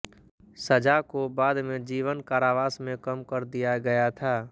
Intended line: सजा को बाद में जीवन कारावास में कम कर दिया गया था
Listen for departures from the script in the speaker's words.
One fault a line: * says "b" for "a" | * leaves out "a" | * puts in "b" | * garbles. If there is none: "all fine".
all fine